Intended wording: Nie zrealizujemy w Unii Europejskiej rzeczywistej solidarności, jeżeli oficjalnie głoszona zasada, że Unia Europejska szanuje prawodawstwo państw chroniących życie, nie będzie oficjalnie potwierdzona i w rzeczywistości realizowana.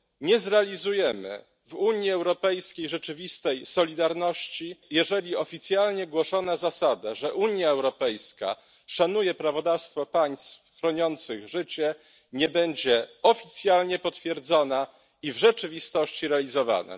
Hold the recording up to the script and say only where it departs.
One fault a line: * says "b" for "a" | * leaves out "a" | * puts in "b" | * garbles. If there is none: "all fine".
all fine